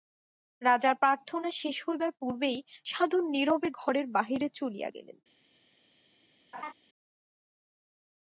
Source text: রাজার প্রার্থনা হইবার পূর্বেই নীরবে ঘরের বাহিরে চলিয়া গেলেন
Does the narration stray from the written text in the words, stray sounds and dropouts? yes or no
yes